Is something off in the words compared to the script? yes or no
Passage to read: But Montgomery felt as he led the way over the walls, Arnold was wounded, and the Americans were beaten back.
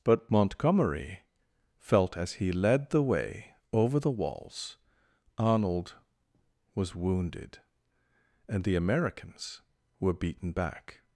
no